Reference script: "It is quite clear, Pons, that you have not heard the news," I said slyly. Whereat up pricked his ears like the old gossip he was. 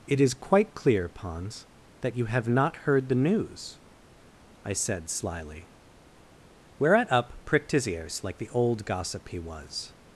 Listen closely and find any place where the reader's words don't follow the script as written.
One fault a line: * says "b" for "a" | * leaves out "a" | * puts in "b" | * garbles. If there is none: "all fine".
all fine